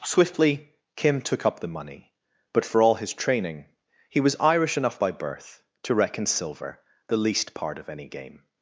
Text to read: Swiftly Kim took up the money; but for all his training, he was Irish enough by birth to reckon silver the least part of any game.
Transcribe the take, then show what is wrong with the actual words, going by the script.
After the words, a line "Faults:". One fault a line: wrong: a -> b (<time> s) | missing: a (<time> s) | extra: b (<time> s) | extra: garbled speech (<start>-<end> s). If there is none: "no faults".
Swiftly Kim took up the money; but for all his training, he was Irish enough by birth to reckon silver the least part of any game.
Faults:
no faults